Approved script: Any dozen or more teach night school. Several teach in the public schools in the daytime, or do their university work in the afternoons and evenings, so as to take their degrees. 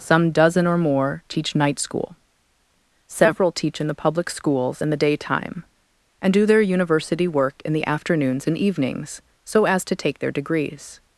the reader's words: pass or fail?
fail